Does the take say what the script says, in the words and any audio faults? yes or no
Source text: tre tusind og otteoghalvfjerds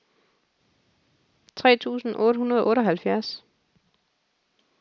no